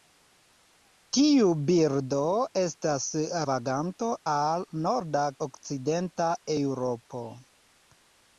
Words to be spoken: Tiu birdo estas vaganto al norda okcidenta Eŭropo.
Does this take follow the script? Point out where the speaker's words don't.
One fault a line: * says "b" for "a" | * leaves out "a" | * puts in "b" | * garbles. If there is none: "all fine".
all fine